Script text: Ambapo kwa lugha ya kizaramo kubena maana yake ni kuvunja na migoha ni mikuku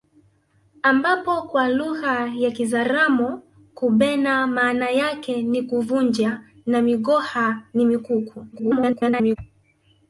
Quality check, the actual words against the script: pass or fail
fail